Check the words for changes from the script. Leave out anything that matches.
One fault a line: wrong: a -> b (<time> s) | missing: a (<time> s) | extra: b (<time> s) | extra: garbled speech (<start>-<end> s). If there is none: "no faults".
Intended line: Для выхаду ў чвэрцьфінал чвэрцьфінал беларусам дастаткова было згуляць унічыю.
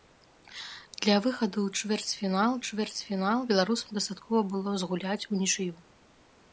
no faults